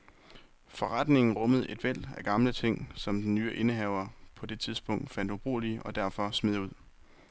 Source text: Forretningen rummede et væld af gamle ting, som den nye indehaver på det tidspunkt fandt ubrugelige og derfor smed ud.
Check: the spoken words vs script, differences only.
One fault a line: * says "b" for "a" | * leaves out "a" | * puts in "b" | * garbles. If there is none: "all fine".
all fine